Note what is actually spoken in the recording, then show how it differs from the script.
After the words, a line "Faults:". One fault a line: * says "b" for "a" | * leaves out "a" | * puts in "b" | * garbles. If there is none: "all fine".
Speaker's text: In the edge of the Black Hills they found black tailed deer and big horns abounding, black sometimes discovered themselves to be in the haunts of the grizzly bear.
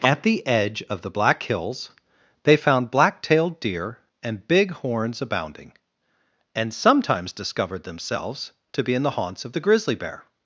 At the edge of the Black Hills they found black tailed deer and big horns abounding, and sometimes discovered themselves to be in the haunts of the grizzly bear.
Faults:
* says "At" for "In"
* says "and" for "black"